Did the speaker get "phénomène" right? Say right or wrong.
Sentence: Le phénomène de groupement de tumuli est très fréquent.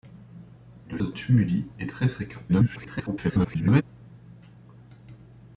wrong